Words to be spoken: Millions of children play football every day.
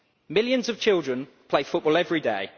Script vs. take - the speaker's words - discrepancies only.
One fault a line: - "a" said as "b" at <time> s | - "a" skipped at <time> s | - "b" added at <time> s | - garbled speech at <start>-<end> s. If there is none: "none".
none